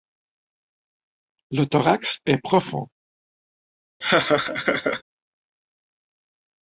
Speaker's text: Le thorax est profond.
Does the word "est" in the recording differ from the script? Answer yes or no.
no